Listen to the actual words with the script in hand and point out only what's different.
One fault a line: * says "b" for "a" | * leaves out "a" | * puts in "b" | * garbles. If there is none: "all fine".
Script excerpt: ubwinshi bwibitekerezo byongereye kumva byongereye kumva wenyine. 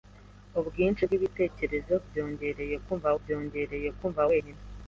all fine